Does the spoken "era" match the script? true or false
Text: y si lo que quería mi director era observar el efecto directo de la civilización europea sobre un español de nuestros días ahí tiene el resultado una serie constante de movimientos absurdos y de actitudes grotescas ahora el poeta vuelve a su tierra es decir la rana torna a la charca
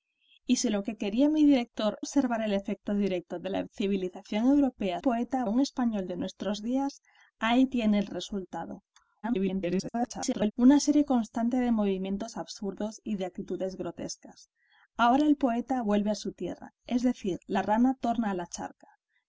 false